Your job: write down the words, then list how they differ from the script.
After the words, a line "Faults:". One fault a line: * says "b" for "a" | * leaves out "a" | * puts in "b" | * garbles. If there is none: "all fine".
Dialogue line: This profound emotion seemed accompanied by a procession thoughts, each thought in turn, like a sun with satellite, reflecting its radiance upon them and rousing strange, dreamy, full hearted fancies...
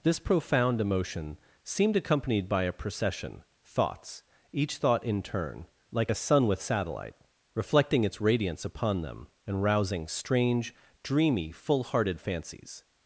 This profound emotion seemed accompanied by a procession thoughts, each thought in turn, like a sun with satellite, reflecting its radiance upon them and rousing strange, dreamy, full hearted fancies...
Faults:
all fine